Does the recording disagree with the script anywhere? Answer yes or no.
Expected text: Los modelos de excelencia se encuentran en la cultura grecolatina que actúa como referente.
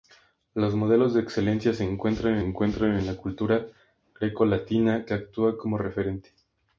yes